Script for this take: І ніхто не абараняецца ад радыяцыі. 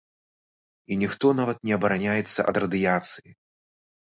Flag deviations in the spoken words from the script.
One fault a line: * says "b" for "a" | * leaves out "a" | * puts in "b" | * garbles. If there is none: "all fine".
* puts in "нават"